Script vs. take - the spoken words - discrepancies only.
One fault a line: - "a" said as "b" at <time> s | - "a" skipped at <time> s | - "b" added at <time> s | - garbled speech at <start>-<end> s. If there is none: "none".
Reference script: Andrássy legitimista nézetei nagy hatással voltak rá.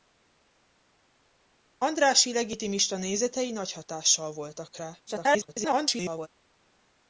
- garbled speech at 5.1-6.3 s